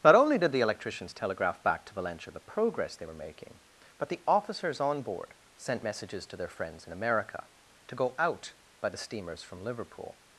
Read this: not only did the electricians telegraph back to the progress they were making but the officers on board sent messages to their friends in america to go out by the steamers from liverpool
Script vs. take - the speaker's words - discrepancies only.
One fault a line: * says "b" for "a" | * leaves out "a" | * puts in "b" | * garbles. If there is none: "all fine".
* puts in "valentia"